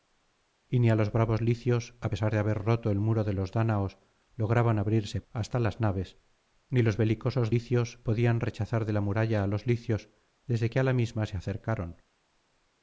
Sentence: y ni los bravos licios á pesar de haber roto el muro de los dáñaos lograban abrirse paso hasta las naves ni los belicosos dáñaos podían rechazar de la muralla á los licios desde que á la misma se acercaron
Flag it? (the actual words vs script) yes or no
yes